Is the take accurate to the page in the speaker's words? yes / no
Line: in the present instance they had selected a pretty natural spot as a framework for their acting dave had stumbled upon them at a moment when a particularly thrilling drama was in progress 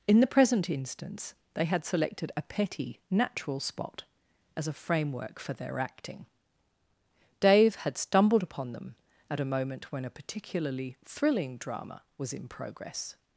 no